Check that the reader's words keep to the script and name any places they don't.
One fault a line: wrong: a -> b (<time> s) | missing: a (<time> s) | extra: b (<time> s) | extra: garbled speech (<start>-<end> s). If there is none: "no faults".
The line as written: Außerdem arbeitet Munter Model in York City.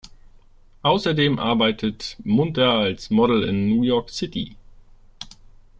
extra: als (2.7 s)
extra: New (3.7 s)